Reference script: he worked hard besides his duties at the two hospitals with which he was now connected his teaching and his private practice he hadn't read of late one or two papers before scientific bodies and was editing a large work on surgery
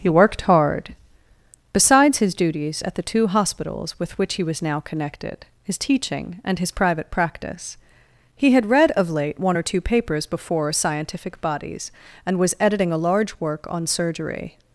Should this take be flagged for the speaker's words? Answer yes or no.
yes